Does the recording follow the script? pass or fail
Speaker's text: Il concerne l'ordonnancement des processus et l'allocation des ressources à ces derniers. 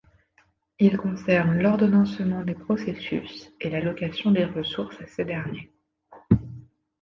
pass